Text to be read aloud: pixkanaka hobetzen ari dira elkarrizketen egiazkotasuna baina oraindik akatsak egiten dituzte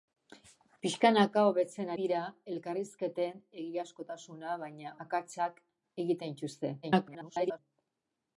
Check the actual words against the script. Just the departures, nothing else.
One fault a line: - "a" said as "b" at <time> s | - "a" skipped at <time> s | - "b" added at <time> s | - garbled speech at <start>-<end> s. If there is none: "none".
- "ari" skipped at 1.9 s
- "oraindik" skipped at 5.0 s
- garbled speech at 6.8-7.6 s